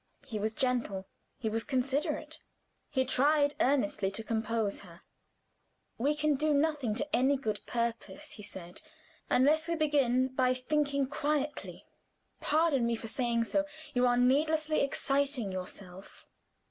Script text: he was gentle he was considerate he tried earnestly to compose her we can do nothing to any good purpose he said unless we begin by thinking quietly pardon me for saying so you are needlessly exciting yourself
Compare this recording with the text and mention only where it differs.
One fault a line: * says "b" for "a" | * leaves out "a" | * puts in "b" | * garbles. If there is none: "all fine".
all fine